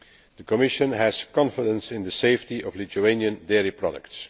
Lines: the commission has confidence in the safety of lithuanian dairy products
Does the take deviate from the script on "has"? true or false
false